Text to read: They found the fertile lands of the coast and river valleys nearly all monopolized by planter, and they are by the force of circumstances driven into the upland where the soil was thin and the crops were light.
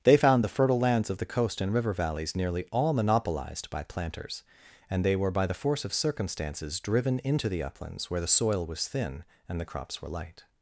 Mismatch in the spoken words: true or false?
true